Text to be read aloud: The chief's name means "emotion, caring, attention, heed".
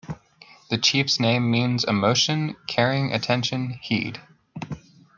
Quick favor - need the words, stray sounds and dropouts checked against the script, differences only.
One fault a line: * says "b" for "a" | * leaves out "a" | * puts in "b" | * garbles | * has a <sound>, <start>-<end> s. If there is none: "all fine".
all fine